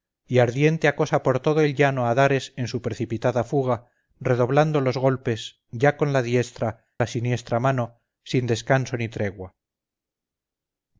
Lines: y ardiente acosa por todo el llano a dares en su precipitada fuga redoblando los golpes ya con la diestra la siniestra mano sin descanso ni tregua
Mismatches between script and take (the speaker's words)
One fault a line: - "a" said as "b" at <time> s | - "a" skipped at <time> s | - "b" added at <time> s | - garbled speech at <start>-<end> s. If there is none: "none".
none